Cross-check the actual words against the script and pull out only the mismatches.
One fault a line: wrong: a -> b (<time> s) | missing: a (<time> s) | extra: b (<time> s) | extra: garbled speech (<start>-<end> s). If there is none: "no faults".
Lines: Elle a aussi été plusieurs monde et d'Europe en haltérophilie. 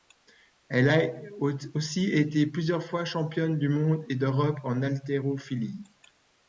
extra: fois championne du (2.8 s)